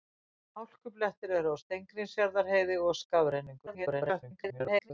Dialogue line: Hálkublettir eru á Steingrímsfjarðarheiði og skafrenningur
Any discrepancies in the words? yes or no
yes